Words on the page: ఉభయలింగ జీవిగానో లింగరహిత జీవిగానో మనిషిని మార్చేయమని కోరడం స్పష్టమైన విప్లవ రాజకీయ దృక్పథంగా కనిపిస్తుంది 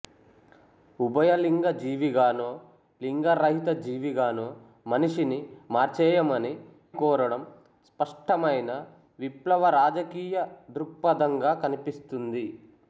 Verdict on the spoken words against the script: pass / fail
pass